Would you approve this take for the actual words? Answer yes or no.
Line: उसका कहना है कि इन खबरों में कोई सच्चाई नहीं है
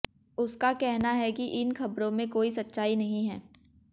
yes